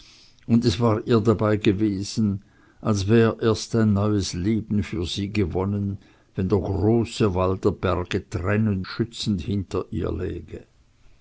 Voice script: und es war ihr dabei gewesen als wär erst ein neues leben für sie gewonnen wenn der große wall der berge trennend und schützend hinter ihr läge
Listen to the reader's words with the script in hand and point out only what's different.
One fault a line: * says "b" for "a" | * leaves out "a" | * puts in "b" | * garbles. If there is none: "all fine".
* leaves out "und"